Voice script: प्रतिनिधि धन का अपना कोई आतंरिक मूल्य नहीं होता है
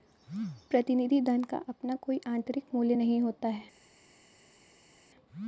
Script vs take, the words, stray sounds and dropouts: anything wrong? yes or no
no